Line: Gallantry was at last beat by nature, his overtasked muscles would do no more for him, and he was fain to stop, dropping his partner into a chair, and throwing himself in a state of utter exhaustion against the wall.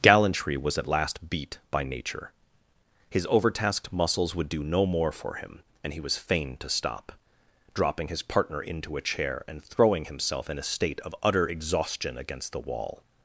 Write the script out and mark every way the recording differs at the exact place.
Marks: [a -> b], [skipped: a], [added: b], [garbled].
Gallantry was at last beat by nature, his overtasked muscles would do no more for him, and he was fain to stop, dropping his partner into a chair, and throwing himself in a state of utter exhaustion against the wall.